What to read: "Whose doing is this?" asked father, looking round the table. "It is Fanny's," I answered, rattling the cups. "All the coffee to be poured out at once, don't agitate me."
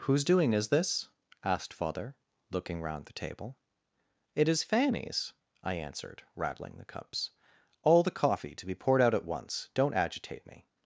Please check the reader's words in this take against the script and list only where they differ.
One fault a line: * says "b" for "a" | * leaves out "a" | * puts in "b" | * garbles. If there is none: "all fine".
all fine